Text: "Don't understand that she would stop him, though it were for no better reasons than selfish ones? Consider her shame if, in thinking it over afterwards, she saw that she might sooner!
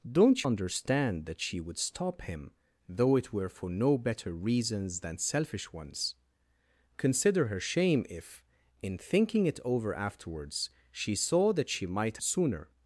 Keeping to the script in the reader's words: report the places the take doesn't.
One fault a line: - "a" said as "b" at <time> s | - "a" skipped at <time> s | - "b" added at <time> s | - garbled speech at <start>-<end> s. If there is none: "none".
none